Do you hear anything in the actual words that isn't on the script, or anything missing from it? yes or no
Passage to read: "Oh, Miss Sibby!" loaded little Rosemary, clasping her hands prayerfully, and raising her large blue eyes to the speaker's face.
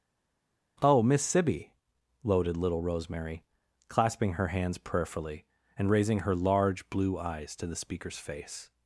no